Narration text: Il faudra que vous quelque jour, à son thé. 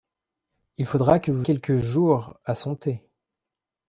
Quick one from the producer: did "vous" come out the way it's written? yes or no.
yes